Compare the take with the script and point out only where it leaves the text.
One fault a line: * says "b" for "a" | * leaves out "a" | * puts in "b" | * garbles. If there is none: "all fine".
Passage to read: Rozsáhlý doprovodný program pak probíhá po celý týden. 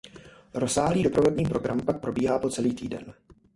all fine